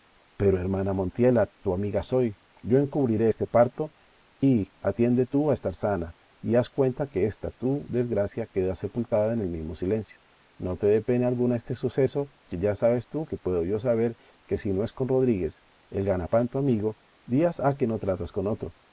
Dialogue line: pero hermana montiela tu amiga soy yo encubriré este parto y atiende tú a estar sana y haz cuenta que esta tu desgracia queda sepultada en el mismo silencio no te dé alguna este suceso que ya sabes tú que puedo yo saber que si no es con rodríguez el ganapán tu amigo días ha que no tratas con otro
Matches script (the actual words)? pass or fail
fail